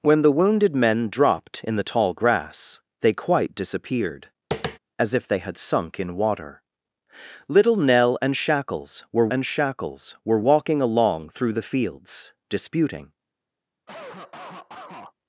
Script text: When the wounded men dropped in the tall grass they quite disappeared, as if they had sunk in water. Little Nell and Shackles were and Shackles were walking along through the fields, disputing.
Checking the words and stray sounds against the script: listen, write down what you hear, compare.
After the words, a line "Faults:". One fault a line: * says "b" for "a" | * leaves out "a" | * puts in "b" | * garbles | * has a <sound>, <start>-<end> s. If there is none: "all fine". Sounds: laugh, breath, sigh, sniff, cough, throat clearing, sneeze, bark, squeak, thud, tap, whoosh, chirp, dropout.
When the wounded men dropped in the tall grass they quite disappeared, as if they had sunk in water. Little Nell and Shackles were and Shackles were walking along through the fields, disputing.
Faults:
* has a tap, 4.5-4.8 s
* has a cough, 13.9-15.1 s